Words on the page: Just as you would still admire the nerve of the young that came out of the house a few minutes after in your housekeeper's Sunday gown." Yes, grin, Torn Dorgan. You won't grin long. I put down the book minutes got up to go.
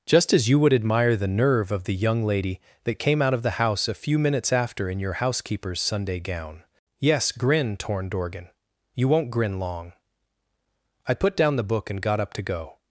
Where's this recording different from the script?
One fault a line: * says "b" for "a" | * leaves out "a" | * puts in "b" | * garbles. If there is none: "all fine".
* leaves out "still"
* puts in "lady"
* says "and" for "minutes"